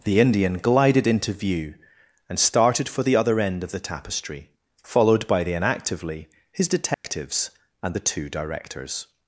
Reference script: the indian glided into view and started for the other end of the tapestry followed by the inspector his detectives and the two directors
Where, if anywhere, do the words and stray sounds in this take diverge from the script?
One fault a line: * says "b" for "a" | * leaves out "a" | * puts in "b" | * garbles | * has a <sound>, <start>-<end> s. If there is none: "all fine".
* says "inactively" for "inspector"
* has a dropout, 6.9-7.0 s